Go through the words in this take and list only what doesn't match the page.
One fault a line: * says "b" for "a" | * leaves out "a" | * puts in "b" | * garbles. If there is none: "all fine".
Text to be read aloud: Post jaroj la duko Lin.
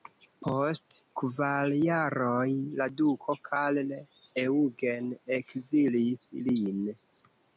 * puts in "kvar"
* puts in "Karl Eugen ekzilis"